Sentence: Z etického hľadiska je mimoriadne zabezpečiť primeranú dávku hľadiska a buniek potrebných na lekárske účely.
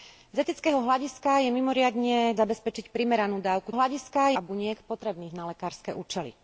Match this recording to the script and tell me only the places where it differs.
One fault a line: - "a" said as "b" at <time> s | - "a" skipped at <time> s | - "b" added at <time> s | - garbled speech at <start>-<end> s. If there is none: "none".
none